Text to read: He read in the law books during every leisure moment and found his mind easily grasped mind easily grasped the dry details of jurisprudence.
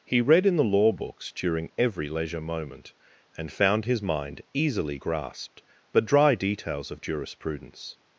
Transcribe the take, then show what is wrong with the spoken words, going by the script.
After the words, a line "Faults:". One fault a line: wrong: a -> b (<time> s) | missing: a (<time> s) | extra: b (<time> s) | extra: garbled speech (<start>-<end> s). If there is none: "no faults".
He read in the law books during every leisure moment and found his mind easily grasped the dry details of jurisprudence.
Faults:
missing: mind easily grasped (5.6 s)